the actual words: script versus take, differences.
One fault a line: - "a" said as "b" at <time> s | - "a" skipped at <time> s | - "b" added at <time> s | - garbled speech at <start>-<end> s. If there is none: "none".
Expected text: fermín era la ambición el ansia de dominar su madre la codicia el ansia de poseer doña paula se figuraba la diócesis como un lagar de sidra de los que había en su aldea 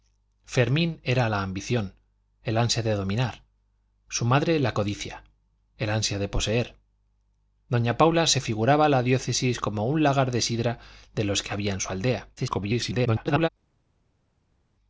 - garbled speech at 12.4-13.5 s